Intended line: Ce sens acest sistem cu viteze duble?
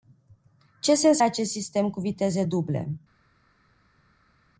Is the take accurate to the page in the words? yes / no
yes